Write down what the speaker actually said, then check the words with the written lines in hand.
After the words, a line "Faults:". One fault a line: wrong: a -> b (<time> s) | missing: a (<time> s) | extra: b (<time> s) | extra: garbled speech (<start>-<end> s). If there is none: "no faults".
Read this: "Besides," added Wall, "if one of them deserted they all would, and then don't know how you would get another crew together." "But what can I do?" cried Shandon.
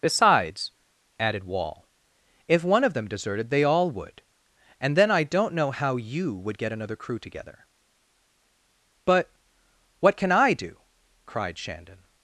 "Besides," added Wall, "if one of them deserted they all would, and then I don't know how you would get another crew together." "But what can I do?" cried Shandon.
Faults:
extra: I (5.1 s)